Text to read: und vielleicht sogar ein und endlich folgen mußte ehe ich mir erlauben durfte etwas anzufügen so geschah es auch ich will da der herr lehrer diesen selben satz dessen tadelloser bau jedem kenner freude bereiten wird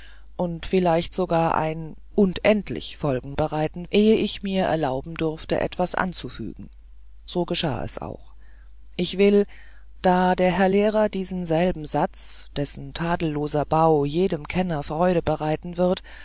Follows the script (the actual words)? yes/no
no